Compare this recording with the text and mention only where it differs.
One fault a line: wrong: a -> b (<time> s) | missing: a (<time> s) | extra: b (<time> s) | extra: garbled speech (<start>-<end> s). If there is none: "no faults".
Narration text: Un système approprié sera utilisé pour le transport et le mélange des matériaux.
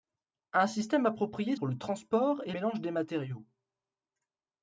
missing: sera utilisé (1.6 s)
missing: le (2.5 s)